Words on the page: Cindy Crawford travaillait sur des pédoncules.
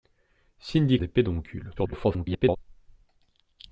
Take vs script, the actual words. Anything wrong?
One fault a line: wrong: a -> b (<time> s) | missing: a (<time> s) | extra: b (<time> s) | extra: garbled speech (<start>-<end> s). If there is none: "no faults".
missing: Crawford travaillait sur (1.0 s)
extra: garbled speech (1.8-2.6 s)